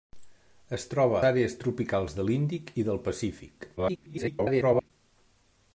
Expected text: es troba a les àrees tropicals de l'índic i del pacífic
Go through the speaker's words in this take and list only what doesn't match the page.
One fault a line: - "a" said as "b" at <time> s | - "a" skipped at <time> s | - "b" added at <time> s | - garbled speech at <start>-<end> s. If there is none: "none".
- "a les" skipped at 1.2 s
- garbled speech at 3.8-4.9 s